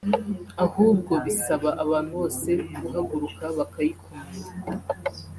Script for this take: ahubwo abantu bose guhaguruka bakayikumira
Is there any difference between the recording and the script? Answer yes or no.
yes